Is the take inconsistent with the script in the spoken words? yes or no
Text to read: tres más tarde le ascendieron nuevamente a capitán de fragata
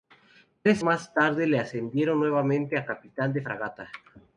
no